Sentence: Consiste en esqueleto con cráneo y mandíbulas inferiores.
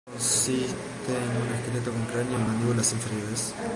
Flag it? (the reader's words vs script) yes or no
yes